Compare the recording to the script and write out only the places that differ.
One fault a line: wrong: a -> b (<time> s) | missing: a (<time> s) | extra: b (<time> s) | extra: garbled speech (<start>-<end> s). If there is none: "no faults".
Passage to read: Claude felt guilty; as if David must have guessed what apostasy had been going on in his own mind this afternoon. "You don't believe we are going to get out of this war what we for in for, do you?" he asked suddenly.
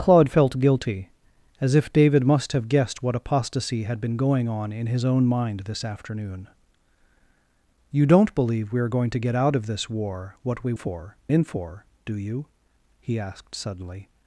no faults